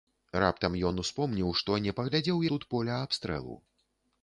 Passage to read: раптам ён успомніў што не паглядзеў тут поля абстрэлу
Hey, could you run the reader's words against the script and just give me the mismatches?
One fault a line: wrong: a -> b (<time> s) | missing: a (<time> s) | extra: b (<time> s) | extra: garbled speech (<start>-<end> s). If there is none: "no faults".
no faults